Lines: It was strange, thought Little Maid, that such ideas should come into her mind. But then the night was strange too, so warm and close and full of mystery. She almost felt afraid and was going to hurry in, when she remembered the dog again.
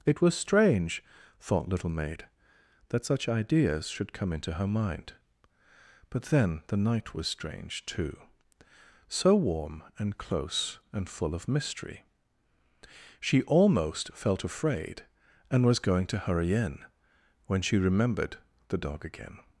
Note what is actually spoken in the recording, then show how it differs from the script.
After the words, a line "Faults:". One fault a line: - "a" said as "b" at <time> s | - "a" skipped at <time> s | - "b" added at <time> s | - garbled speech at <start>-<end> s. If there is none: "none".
It was strange, thought Little Maid, that such ideas should come into her mind. But then the night was strange too, so warm and close and full of mystery. She almost felt afraid and was going to hurry in, when she remembered the dog again.
Faults:
none